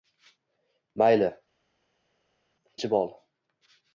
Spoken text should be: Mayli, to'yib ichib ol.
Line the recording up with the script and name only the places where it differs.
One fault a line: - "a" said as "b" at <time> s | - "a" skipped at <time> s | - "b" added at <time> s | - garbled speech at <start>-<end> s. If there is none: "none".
- "to'yib" skipped at 1.3 s